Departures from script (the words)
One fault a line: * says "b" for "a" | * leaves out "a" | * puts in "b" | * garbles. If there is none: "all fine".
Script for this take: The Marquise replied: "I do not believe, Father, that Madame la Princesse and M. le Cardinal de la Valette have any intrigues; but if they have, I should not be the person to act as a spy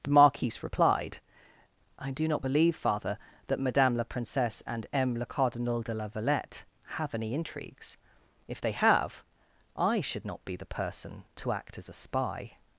* leaves out "but"